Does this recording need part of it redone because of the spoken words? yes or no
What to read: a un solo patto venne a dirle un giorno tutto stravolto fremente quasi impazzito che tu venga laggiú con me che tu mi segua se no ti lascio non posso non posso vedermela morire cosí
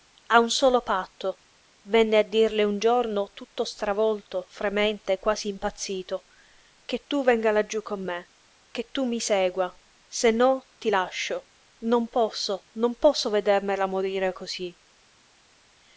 no